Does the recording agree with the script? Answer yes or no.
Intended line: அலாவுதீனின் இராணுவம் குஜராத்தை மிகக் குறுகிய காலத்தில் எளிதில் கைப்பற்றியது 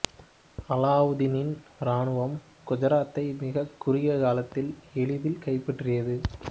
yes